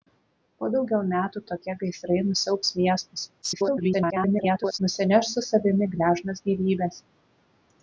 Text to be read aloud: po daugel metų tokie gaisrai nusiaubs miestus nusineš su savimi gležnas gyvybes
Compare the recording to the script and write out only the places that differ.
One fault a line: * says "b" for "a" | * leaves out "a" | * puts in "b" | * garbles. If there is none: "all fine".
* garbles